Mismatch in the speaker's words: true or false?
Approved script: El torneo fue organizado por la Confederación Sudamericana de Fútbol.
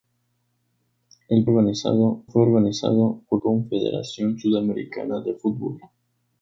true